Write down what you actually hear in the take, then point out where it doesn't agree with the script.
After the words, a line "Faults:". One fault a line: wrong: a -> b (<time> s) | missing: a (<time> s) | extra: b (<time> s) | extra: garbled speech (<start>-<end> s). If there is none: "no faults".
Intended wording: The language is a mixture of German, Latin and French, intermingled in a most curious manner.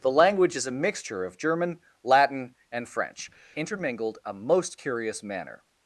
The language is a mixture of German, Latin and French, intermingled a most curious manner.
Faults:
missing: in (4.2 s)